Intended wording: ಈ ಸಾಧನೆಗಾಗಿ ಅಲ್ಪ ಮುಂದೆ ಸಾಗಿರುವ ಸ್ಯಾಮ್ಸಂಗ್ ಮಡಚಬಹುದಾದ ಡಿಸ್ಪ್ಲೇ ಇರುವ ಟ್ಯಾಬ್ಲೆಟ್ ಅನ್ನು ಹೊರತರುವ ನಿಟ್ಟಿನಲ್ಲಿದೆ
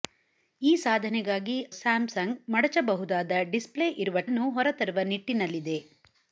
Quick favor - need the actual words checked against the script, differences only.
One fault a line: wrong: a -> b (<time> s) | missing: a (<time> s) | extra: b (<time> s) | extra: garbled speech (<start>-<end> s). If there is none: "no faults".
missing: ಅಲ್ಪ ಮುಂದೆ ಸಾಗಿರುವ (1.6 s)
missing: ಟ್ಯಾಬ್ಲೆಟ್ (4.3 s)